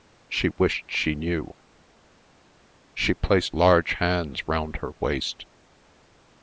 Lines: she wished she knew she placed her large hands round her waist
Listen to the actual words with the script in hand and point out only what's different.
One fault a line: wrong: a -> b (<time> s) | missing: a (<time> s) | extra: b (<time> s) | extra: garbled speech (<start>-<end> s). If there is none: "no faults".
missing: her (3.6 s)